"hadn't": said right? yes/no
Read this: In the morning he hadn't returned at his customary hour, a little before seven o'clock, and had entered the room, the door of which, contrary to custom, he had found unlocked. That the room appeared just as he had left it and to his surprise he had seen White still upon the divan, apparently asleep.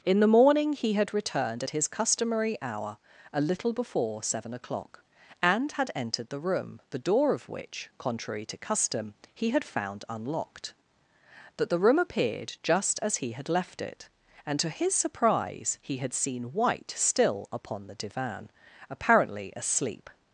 no